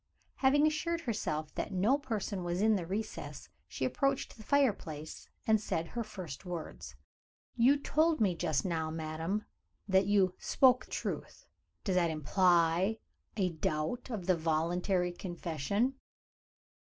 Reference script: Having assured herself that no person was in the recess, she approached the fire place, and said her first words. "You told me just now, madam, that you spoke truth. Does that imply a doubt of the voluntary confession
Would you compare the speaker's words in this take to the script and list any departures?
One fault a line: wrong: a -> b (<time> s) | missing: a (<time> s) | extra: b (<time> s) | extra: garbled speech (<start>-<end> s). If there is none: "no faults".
no faults